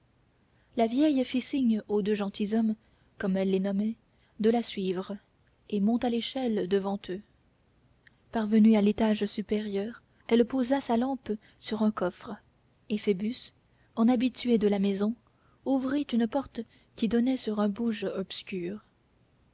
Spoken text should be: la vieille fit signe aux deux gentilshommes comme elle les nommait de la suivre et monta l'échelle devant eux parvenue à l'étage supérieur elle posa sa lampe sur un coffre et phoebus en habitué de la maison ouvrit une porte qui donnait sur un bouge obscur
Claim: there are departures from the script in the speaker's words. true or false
false